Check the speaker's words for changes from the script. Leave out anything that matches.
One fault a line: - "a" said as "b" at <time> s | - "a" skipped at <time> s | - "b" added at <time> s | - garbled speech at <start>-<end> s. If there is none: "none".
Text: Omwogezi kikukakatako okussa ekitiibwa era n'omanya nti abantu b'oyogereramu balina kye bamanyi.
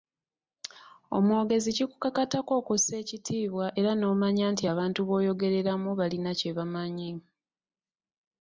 none